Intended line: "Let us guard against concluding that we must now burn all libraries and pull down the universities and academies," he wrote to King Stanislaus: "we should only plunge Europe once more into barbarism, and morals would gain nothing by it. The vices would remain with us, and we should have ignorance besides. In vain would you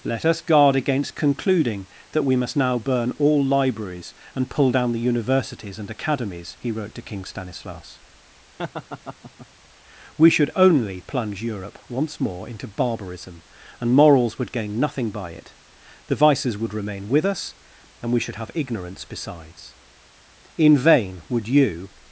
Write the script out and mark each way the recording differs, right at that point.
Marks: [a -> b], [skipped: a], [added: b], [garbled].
"Let us guard against concluding that we must now burn all libraries and pull down the universities and academies," he wrote to King Stanislaus: "we should only plunge Europe once more into barbarism, and morals would gain nothing by it. The vices would remain with us, and we should have ignorance besides. In vain would you